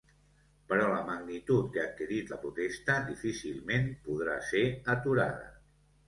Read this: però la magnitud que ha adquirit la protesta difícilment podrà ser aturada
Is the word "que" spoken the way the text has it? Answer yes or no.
yes